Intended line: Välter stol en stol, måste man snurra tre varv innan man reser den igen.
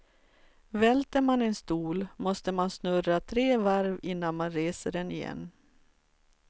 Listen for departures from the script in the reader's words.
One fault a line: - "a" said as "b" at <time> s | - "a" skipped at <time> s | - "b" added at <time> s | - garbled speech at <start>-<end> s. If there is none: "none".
- "stol" said as "man" at 1.2 s